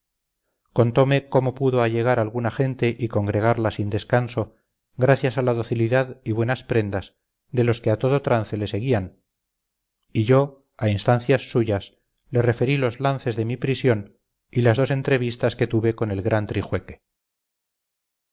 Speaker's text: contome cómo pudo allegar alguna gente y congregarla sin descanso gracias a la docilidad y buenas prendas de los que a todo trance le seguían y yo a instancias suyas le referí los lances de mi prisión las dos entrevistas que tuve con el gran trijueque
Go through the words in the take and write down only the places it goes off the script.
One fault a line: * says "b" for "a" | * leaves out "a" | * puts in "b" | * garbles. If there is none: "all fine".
* puts in "y"